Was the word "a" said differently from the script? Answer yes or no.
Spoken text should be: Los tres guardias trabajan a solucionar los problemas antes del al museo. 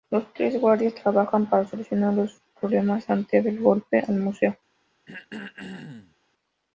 yes